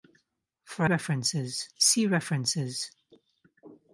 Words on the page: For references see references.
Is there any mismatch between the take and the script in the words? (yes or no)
no